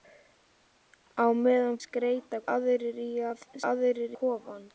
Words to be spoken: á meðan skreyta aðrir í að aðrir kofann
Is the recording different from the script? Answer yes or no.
no